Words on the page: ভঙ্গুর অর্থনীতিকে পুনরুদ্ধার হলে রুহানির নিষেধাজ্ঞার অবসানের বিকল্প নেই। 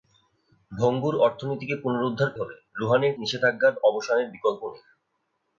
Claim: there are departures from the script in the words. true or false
false